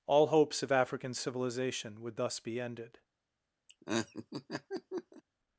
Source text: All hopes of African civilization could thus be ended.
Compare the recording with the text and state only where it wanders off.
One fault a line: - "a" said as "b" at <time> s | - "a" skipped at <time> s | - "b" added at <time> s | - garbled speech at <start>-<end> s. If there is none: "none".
- "could" said as "would" at 2.0 s